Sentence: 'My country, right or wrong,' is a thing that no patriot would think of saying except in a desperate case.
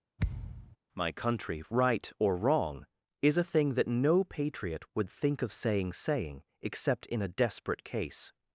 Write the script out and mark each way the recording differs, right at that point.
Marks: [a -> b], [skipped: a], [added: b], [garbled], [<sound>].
[thud] 'My country, right or wrong,' is a thing that no patriot would think of saying [added: saying] except in a desperate case.